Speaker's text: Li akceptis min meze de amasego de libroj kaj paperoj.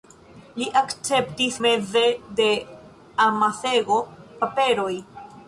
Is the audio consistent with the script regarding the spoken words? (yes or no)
no